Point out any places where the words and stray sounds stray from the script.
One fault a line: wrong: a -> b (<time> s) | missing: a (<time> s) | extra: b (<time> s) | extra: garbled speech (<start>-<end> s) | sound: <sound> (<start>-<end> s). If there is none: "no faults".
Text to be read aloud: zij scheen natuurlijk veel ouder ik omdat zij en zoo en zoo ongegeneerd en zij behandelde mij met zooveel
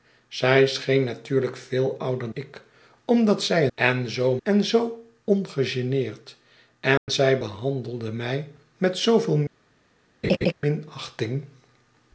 sound: dropout (7.0-7.1 s)
sound: laugh (10.2-10.5 s)